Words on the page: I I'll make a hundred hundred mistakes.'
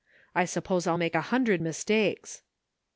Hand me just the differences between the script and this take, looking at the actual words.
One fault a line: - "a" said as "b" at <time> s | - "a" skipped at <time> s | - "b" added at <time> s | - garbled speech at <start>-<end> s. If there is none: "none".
- "suppose" added at 0.5 s
- "hundred" skipped at 1.6 s